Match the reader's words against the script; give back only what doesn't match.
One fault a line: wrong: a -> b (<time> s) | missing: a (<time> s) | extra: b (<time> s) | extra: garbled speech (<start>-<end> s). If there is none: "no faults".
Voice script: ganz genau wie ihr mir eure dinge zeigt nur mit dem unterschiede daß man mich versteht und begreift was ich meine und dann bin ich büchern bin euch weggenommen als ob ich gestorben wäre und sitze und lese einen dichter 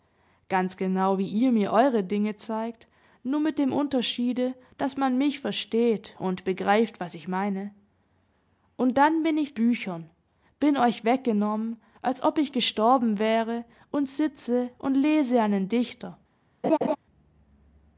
no faults